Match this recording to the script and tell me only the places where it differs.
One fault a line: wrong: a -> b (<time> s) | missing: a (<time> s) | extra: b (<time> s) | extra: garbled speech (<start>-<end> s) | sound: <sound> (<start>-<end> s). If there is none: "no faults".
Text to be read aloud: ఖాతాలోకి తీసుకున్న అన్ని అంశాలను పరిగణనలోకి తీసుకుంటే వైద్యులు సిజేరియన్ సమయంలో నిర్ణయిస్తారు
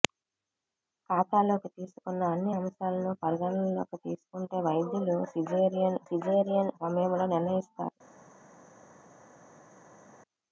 extra: సిజేరియన్ (6.1 s)